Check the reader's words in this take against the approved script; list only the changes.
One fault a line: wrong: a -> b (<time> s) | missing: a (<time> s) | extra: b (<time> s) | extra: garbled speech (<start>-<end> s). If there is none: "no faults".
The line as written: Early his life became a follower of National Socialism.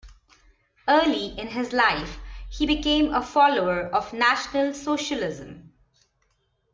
extra: in (1.4 s)
extra: he (2.5 s)